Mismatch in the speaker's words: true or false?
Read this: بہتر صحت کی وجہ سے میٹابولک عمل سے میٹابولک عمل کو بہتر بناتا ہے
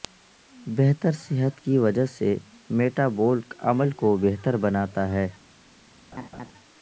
true